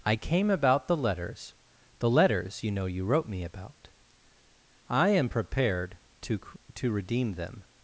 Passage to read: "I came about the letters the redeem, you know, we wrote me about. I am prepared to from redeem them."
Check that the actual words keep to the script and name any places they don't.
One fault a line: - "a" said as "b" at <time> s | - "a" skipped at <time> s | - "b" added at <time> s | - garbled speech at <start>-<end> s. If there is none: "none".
- "redeem" said as "letters" at 2.1 s
- "we" said as "you" at 2.8 s
- "from" said as "to" at 6.7 s